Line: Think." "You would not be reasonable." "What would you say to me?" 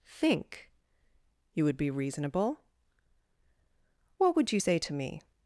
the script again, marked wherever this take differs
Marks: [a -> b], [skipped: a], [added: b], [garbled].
Think." "You would [skipped: not] be reasonable." "What would you say to me?"